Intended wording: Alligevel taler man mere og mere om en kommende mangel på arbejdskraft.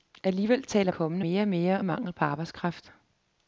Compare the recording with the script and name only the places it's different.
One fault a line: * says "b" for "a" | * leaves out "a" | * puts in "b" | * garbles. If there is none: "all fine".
* says "kommende" for "man"
* leaves out "om en kommende"